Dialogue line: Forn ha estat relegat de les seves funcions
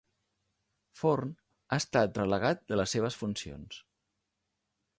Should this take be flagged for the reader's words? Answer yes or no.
no